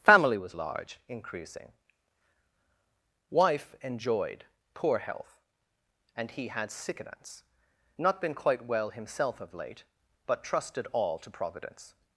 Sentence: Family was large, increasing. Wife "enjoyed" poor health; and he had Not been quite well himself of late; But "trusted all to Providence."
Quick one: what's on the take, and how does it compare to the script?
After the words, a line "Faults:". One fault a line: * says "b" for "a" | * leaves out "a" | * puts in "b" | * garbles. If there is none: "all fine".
Family was large, increasing. Wife "enjoyed" poor health; and he had sickness Not been quite well himself of late; But "trusted all to Providence."
Faults:
* puts in "sickness"